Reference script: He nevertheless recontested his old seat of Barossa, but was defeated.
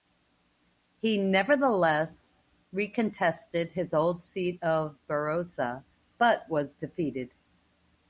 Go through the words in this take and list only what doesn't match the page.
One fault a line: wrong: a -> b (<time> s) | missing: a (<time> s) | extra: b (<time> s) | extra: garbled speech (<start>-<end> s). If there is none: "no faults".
no faults